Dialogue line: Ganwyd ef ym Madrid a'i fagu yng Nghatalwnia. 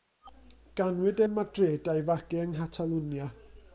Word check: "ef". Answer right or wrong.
wrong